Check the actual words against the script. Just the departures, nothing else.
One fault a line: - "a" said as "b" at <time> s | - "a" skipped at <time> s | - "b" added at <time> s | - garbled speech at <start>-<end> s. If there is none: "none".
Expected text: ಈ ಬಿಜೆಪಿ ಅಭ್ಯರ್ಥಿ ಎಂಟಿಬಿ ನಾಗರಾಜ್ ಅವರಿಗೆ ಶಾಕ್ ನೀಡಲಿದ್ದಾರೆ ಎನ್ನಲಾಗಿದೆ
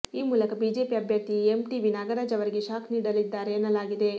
- "ಮೂಲಕ" added at 0.2 s